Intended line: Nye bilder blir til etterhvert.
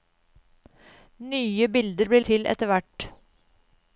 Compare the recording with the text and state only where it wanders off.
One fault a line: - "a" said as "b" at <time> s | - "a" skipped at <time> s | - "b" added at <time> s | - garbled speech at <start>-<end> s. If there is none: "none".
none